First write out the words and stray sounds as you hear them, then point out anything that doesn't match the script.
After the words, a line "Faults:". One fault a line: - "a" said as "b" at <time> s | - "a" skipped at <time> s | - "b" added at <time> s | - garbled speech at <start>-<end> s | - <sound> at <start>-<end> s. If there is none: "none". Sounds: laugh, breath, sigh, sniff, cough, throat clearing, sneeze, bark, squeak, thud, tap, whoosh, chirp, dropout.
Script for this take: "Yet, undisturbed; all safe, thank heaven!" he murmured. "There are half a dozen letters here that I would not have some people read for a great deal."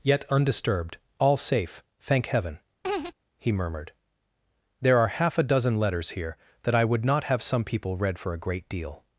"Yet, undisturbed; all safe, thank heaven!" he murmured. "There are half a dozen letters here that I would not have some people read for a great deal."
Faults:
- laugh at 2.8-3.1 s